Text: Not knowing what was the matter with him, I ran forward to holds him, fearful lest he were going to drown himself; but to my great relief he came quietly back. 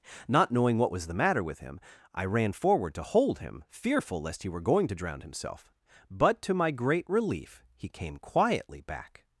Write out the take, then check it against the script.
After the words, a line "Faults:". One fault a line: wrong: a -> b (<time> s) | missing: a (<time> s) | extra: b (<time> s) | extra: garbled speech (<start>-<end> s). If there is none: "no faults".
Not knowing what was the matter with him, I ran forward to hold him, fearful lest he were going to drown himself; but to my great relief he came quietly back.
Faults:
wrong: holds -> hold (3.0 s)